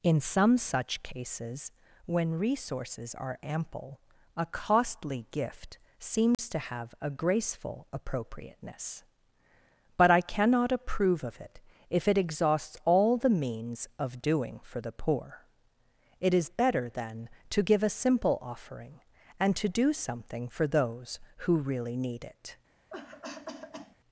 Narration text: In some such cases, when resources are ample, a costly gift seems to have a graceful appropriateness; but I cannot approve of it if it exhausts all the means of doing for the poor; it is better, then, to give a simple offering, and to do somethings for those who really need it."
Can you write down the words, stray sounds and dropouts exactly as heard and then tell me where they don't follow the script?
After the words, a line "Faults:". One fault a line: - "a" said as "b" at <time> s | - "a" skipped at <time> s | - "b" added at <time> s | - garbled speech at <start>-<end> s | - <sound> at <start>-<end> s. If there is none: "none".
In some such cases, when resources are ample, a costly gift seems to have a graceful appropriateness; but I cannot approve of it if it exhausts all the means of doing for the poor; it is better, then, to give a simple offering, and to do something for those who really need it."
Faults:
- dropout at 6.3-6.4 s
- "somethings" said as "something" at 19.9 s
- cough at 22.9-24.0 s